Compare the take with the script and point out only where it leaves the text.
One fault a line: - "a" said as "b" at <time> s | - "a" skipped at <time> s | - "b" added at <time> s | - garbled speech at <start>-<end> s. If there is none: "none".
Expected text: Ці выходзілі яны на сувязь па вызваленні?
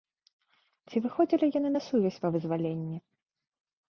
none